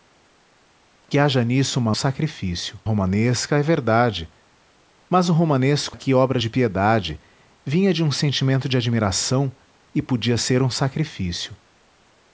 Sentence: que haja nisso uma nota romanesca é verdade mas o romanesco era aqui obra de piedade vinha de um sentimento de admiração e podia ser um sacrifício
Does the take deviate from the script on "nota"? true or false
true